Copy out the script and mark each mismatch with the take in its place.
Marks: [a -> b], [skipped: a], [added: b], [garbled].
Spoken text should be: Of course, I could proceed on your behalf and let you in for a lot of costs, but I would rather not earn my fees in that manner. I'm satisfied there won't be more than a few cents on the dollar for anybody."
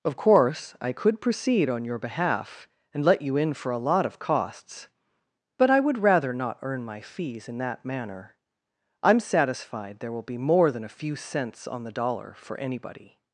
Of course, I could proceed on your behalf and let you in for a lot of costs, but I would rather not earn my fees in that manner. I'm satisfied there [won't -> will] be more than a few cents on the dollar for anybody."